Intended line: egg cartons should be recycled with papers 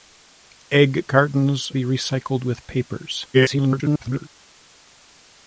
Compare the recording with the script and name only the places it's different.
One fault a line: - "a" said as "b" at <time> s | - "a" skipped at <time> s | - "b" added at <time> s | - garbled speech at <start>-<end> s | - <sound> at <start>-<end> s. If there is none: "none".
- "should" skipped at 1.7 s
- garbled speech at 3.3-4.3 s